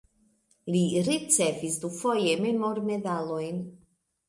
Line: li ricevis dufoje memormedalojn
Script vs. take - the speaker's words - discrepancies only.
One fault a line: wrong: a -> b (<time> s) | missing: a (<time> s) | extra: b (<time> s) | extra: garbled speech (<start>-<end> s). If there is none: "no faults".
no faults